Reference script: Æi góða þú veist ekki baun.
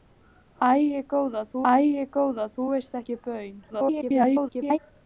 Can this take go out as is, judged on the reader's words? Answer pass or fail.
fail